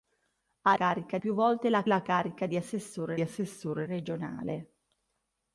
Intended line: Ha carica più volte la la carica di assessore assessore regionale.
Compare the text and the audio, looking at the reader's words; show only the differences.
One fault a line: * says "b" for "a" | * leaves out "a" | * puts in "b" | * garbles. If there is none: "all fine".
all fine